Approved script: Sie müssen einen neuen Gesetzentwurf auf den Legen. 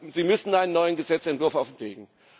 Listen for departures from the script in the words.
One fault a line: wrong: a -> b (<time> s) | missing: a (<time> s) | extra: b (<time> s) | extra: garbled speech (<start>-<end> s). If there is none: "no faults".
no faults